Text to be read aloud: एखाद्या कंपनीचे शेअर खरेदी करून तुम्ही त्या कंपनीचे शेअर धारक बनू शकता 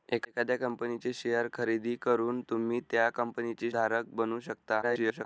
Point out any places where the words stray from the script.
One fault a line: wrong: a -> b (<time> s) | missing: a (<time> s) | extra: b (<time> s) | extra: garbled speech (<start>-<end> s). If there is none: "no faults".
missing: शेअर (3.7 s)
extra: garbled speech (4.8-5.3 s)